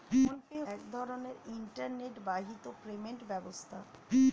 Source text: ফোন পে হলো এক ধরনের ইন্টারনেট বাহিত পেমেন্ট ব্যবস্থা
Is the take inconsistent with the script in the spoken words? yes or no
yes